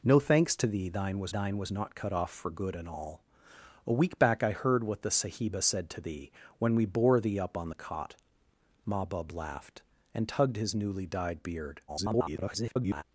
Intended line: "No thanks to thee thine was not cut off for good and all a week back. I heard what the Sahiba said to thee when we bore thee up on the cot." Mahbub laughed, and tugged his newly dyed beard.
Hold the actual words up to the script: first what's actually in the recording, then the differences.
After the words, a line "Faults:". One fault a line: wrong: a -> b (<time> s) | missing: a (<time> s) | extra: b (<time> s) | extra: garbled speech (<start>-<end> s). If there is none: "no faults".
"No thanks to thee thine was thine was not cut off for good and all a week back. I heard what the Sahiba said to thee when we bore thee up on the cot." Mahbub laughed, and tugged his newly dyed beard. [garbled]
Faults:
extra: thine was (1.3 s)
extra: garbled speech (11.9-13.0 s)